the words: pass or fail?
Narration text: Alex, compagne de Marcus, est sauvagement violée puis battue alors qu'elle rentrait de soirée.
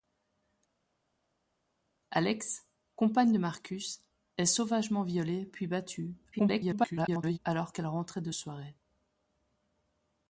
fail